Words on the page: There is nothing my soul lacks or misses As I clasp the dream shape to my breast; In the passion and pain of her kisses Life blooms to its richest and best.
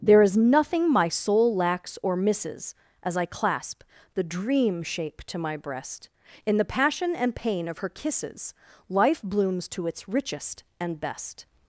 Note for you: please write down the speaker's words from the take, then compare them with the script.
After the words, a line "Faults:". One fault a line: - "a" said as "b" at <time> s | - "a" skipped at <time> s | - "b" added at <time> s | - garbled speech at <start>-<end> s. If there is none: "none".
There is nothing my soul lacks or misses As I clasp the dream shape to my breast; In the passion and pain of her kisses Life blooms to its richest and best.
Faults:
none